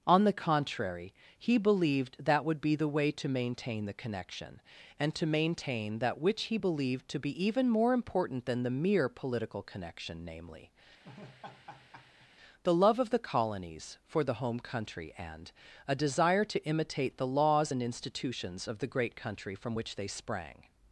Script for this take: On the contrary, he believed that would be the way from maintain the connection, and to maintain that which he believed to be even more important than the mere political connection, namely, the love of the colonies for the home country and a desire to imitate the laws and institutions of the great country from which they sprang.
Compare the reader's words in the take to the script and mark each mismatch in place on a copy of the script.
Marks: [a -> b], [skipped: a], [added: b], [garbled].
On the contrary, he believed that would be the way [from -> to] maintain the connection, and to maintain that which he believed to be even more important than the mere political connection, namely, the love of the colonies for the home country and a desire to imitate the laws and institutions of the great country from which they sprang.